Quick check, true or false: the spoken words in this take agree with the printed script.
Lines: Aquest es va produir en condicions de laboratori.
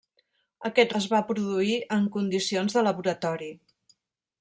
true